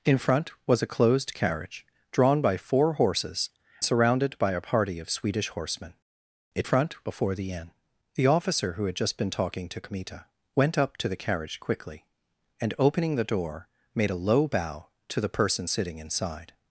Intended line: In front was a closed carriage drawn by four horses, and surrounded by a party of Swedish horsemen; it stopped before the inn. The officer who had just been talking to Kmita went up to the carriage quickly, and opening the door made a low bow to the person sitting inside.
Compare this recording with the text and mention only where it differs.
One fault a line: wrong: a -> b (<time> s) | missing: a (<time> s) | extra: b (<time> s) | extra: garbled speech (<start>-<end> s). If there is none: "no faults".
missing: and (3.5 s)
wrong: stopped -> front (6.6 s)